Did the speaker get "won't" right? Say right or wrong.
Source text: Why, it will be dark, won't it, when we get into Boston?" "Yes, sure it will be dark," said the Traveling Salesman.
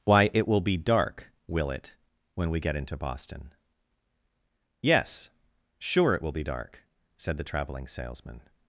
wrong